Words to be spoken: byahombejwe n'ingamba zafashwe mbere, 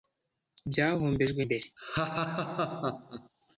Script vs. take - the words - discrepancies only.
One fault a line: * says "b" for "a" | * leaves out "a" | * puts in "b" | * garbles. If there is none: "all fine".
* leaves out "n'ingamba zafashwe"